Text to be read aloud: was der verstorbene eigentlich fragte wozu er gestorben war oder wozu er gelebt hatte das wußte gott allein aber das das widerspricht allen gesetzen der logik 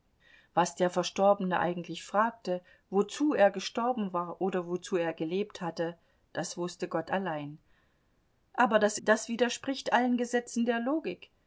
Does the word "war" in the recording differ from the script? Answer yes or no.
no